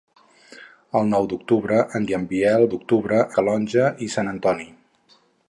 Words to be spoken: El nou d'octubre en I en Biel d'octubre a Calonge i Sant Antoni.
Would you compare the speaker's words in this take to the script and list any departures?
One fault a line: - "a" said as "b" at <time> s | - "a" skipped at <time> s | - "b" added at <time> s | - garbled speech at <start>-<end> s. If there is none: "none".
none